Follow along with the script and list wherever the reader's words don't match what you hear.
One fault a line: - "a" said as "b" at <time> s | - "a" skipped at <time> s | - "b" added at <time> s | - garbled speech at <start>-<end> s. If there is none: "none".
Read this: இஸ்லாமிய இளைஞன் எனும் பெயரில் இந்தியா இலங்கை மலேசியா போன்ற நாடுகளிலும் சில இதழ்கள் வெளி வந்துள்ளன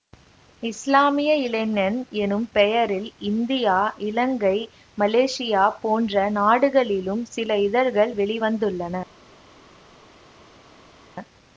none